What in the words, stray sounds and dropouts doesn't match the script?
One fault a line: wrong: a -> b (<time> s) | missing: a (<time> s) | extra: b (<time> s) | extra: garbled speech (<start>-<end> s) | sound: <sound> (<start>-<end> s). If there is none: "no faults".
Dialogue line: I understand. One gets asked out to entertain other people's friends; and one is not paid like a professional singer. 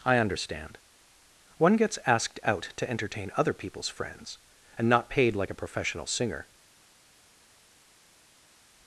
missing: one is (4.9 s)